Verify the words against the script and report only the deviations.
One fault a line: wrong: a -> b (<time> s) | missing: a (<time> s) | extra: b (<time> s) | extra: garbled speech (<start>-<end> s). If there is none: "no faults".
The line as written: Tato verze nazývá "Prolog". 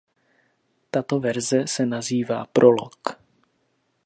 extra: se (1.7 s)